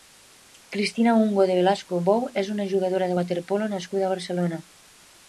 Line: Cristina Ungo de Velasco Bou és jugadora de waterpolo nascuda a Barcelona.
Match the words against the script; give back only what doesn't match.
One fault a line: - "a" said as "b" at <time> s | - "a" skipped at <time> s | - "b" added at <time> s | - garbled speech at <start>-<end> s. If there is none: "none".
- "una" added at 2.5 s